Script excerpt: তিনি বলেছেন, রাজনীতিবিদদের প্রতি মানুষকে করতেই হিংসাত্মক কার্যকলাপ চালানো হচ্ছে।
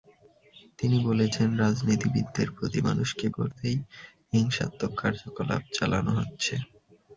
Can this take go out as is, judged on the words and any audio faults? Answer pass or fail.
pass